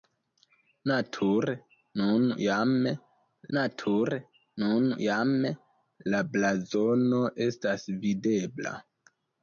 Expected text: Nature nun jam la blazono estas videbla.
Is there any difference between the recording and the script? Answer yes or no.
yes